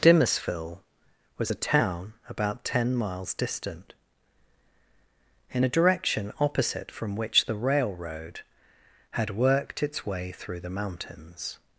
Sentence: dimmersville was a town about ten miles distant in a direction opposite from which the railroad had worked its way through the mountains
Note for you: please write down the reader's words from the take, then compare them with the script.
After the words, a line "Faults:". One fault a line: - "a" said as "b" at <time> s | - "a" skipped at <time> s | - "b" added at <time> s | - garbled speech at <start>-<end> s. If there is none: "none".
dimmersville was a town about ten miles distant in a direction opposite from which the railroad had worked its way through the mountains
Faults:
none